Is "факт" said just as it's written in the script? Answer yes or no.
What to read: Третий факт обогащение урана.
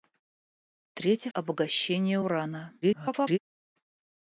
no